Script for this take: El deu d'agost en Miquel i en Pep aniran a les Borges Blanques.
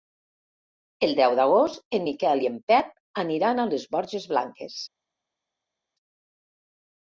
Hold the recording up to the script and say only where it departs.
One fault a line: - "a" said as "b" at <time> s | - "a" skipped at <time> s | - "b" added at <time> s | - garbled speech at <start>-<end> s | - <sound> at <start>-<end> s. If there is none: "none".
none